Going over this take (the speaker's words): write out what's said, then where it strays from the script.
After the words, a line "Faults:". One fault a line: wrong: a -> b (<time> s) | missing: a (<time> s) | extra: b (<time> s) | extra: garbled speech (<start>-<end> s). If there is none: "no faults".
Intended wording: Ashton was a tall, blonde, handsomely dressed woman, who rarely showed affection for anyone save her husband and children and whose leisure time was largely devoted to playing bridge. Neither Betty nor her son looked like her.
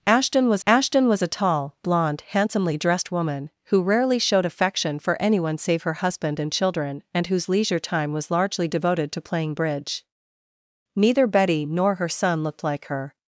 Ashton was ashton was a tall, blonde, handsomely dressed woman, who rarely showed affection for anyone save her husband and children and whose leisure time was largely devoted to playing bridge. Neither Betty nor her son looked like her.
Faults:
extra: ashton was (0.7 s)